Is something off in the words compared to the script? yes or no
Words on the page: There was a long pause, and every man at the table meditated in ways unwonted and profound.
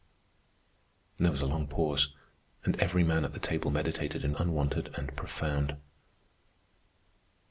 yes